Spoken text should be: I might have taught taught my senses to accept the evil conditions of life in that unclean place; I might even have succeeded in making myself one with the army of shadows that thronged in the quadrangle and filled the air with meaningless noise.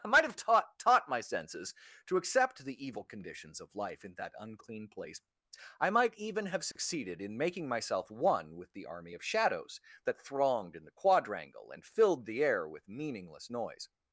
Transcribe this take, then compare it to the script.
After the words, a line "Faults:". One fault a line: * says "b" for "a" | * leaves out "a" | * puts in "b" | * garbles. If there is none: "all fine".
I might have taught taught my senses to accept the evil conditions of life in that unclean place; I might even have succeeded in making myself one with the army of shadows that thronged in the quadrangle and filled the air with meaningless noise.
Faults:
all fine